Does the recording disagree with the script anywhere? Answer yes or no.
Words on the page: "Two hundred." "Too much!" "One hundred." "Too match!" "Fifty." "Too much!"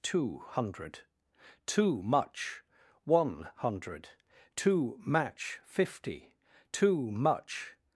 no